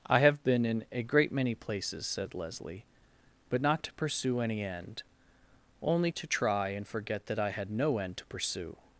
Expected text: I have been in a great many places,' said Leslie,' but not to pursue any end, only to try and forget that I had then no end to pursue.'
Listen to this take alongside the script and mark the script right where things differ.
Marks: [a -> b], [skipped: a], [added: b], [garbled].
I have been in a great many places,' said Leslie,' but not to pursue any end, only to try and forget that I had [skipped: then] no end to pursue.'